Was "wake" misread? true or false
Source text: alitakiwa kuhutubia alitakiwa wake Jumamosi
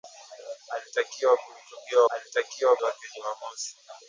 false